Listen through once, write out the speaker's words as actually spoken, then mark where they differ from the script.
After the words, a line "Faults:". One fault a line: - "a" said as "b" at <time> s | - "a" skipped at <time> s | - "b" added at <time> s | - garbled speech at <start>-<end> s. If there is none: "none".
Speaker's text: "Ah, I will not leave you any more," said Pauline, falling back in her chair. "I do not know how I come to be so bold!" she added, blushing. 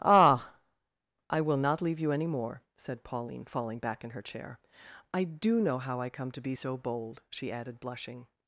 "Ah, I will not leave you any more," said Pauline, falling back in her chair. "I do know how I come to be so bold!" she added, blushing.
Faults:
- "not" skipped at 5.6 s